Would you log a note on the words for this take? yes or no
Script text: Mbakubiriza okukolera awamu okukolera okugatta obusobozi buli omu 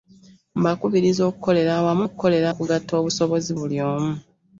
no